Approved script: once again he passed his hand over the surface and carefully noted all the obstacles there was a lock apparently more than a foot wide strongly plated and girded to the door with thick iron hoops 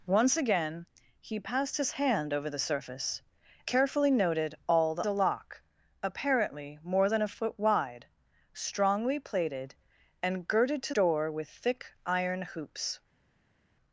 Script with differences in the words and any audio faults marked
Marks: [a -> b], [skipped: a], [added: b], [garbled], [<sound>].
once again he passed his hand over the surface [skipped: and] carefully noted all the [skipped: obstacles there was] a lock apparently more than a foot wide strongly plated and girded to [skipped: the] door with thick iron hoops